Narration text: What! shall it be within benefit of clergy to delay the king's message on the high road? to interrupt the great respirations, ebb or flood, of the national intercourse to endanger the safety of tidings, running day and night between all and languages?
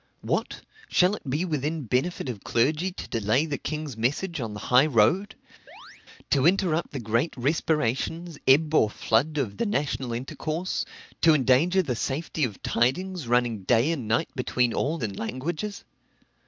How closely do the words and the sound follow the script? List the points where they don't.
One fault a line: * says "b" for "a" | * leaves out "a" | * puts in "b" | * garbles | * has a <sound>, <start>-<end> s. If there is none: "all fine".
* has a chirp, 5.7-6.1 s